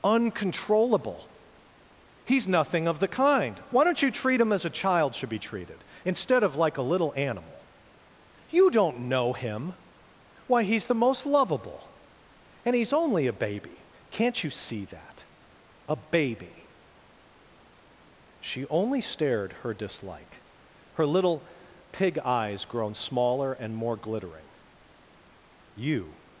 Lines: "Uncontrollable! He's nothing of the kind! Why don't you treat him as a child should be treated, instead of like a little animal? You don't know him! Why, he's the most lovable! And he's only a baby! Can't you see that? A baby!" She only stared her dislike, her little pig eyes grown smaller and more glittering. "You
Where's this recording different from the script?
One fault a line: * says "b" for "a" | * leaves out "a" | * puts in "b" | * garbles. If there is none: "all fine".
all fine